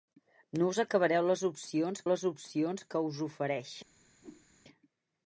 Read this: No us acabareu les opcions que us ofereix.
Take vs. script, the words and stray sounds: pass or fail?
fail